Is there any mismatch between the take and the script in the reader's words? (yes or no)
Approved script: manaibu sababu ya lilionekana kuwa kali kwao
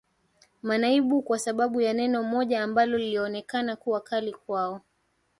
yes